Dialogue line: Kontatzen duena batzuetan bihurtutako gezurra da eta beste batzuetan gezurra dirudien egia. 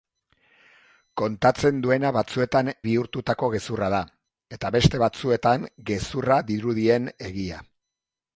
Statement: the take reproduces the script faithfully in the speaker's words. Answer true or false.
true